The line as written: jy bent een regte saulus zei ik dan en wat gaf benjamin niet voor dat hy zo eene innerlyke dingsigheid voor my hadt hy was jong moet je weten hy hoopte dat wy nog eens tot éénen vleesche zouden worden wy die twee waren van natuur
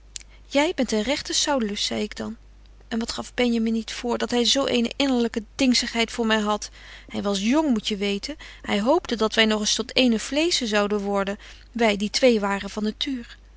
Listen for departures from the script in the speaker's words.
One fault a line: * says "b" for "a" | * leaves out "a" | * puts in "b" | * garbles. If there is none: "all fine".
all fine